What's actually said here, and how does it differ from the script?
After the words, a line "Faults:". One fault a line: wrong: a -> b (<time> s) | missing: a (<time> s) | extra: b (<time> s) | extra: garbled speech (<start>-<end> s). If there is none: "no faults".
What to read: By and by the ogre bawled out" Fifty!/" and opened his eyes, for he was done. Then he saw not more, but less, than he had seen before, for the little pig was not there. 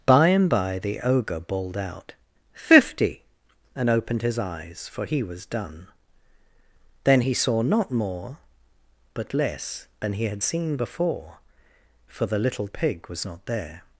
By and by the ogre bawled out" Fifty!/" and opened his eyes, for he was done. Then he saw not more, but less, than he had seen before, for the little pig was not there.
Faults:
no faults